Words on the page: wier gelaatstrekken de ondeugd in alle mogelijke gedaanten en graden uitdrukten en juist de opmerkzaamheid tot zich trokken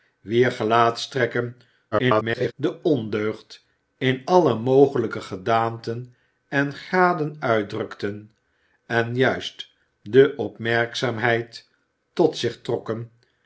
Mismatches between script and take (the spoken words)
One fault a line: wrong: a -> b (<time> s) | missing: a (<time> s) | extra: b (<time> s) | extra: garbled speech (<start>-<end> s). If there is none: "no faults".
extra: garbled speech (1.9-2.5 s)